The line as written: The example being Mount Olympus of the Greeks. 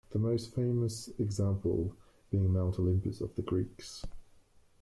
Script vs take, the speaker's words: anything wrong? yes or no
yes